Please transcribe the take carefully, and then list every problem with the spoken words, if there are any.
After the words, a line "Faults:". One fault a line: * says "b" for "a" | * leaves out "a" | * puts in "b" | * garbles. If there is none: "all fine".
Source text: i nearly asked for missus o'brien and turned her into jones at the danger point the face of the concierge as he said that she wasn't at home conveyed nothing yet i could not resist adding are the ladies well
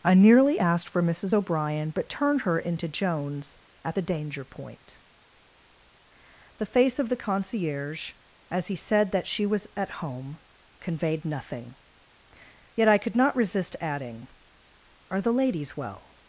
i nearly asked for missus o'brien but turned her into jones at the danger point the face of the concierge as he said that she was at home conveyed nothing yet i could not resist adding are the ladies well
Faults:
* says "but" for "and"
* says "was" for "wasn't"